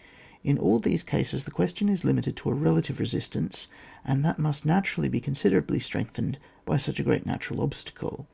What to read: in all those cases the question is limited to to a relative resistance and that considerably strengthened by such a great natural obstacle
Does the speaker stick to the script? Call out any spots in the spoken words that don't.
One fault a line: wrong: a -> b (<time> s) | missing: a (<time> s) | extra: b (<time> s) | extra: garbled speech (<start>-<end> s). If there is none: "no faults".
wrong: those -> these (0.8 s)
missing: to (2.5 s)
extra: must naturally be (4.4 s)